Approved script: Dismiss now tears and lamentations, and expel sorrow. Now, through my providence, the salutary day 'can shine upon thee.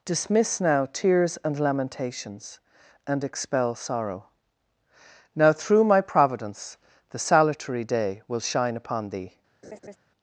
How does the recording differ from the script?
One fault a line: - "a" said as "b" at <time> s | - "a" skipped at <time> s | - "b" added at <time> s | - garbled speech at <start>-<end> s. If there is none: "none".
- "can" said as "will" at 8.3 s